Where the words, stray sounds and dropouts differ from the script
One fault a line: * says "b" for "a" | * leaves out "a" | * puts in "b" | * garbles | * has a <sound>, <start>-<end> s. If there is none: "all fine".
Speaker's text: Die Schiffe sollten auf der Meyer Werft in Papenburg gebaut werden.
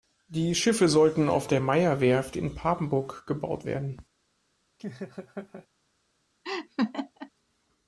* has a laugh, 4.8-5.7 s
* has a laugh, 6.4-7.3 s